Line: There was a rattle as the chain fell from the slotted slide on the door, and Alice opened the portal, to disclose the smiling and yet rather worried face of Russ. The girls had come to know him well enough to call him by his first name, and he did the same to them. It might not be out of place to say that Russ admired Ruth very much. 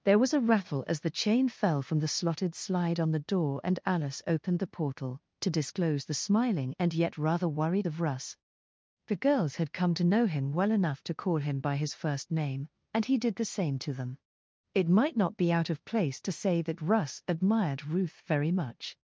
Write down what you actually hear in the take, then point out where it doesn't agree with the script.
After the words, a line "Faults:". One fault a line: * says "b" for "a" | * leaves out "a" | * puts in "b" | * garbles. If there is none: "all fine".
There was a rattle as the chain fell from the slotted slide on the door, and Alice opened the portal, to disclose the smiling and yet rather worried of Russ. The girls had come to know him well enough to call him by his first name, and he did the same to them. It might not be out of place to say that Russ admired Ruth very much.
Faults:
* leaves out "face"